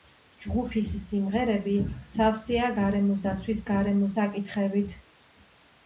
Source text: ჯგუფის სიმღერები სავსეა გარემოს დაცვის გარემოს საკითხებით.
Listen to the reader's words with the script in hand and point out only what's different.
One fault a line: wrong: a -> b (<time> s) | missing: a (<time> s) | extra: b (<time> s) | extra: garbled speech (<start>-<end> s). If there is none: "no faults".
no faults